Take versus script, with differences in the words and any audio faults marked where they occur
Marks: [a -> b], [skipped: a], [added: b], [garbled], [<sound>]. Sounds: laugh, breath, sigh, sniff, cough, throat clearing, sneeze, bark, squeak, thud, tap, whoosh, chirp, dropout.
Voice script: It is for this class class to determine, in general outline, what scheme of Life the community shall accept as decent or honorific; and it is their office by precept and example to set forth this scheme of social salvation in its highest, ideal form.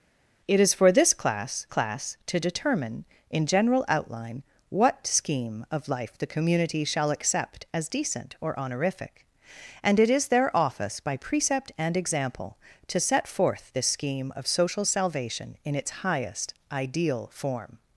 It is for this class class to determine, in general outline, what scheme of Life the community shall accept as decent or honorific; and it is their office by precept and example to set forth this scheme of social salvation in its highest, ideal form.